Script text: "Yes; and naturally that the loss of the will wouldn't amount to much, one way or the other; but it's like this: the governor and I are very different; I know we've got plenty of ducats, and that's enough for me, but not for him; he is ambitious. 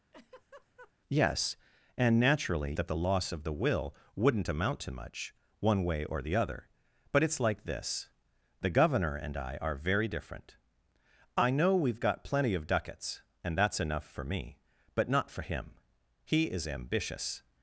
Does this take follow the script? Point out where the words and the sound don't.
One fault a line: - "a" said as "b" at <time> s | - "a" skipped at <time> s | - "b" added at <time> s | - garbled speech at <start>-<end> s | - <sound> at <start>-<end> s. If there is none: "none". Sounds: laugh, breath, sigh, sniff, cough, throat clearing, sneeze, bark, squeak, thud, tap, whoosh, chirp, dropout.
- laugh at 0.1-0.9 s